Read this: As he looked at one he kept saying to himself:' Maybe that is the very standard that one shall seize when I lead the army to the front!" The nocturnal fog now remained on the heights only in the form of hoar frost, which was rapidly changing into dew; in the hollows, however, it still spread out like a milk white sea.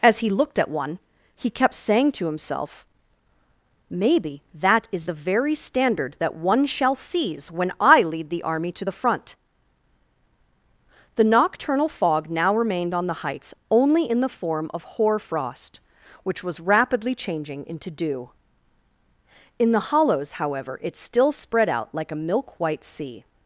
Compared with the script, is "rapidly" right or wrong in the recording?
right